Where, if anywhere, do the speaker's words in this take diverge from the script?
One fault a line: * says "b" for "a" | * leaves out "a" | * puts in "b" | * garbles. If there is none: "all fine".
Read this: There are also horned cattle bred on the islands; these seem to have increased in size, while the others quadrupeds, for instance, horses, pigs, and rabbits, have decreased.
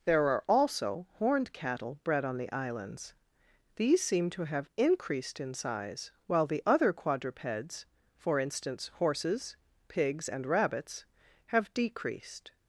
* says "other" for "others"